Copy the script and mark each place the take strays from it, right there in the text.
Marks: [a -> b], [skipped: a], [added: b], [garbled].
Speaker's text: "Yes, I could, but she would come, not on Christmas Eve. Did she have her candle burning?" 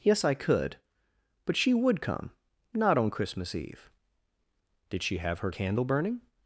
"Yes, I could, but she would come, not on Christmas Eve. Did she have her candle burning?"